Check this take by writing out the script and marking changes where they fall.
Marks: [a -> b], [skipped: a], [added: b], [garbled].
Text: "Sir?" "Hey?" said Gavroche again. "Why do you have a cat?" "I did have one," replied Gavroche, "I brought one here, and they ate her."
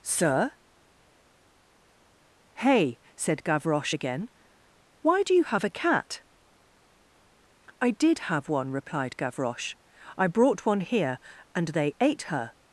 "Sir?" "Hey?" said Gavroche again. "Why do you have a cat?" "I did have one," replied Gavroche, "I brought one here, and they ate her."